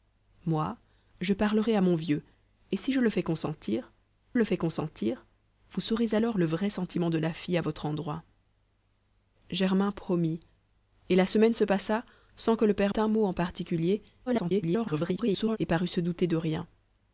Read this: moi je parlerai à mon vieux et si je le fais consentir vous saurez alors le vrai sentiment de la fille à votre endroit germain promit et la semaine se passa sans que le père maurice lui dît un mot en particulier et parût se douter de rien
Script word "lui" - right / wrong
wrong